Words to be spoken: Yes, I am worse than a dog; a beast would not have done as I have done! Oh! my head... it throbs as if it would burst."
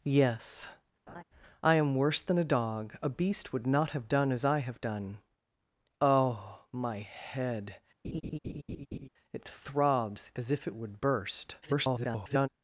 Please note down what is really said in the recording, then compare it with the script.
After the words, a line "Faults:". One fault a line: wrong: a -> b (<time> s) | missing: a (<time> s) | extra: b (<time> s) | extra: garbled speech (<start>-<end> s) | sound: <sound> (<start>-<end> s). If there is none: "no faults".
Yes, I am worse than a dog; a beast would not have done as I have done! Oh! my head... it throbs as if it would burst." [garbled]
Faults:
sound: laugh (1.1-1.2 s)
sound: laugh (8.0-9.1 s)
extra: garbled speech (11.6-12.5 s)